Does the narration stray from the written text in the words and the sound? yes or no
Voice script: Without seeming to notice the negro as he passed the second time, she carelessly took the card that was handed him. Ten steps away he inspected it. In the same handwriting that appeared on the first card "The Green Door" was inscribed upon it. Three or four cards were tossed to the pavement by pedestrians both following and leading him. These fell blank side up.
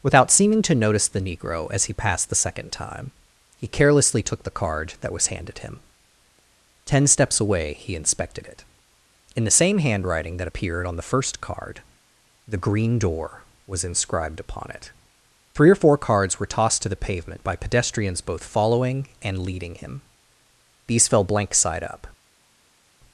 yes